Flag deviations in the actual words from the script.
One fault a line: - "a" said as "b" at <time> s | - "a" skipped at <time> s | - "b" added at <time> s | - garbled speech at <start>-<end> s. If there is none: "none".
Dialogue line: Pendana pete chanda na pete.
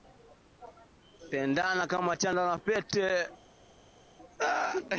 - "pete" said as "kama" at 1.9 s